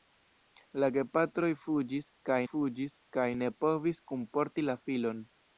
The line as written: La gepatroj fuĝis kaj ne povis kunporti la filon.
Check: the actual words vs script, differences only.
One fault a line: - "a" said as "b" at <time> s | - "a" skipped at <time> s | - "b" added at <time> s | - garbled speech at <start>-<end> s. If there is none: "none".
- "fuĝis kaj" added at 2.5 s